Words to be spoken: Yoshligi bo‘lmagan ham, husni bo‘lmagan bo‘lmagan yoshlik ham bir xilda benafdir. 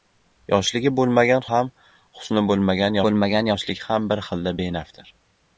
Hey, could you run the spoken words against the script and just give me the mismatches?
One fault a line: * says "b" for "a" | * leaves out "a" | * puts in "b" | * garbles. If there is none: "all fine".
all fine